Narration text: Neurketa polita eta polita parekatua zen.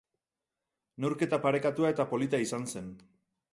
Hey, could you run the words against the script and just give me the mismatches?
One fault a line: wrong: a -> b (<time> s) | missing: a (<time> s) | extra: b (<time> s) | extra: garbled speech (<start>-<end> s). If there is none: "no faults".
wrong: polita -> parekatua (1.4 s)
wrong: parekatua -> izan (2.5 s)